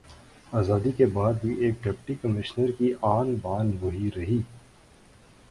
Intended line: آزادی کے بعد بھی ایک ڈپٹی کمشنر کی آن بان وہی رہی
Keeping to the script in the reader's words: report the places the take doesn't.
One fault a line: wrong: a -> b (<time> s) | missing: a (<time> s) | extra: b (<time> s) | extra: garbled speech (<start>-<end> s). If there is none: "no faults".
no faults